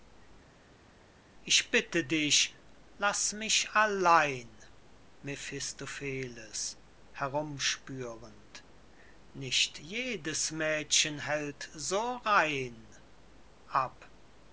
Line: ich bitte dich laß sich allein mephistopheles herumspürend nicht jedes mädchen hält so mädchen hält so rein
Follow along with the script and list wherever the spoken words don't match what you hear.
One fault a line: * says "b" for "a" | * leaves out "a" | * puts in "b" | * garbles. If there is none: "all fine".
* says "mich" for "sich"
* leaves out "mädchen hält so"